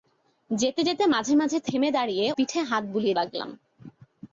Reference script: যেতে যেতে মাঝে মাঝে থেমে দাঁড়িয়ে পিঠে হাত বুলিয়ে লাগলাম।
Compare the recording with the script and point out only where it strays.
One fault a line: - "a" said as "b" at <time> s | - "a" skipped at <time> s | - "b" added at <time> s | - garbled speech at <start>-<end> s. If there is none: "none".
none